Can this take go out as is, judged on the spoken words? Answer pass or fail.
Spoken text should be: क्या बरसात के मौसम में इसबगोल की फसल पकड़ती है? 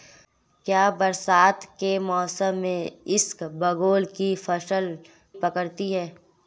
pass